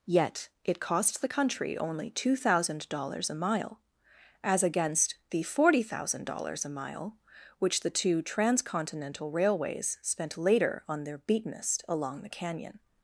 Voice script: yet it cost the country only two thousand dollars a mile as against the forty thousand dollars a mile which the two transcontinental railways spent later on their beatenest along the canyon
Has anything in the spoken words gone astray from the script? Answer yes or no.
no